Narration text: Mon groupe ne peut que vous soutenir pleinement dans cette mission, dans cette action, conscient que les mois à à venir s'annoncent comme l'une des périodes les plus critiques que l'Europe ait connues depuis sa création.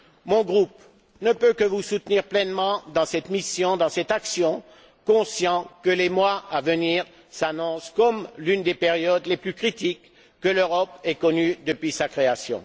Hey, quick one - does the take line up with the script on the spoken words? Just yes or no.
no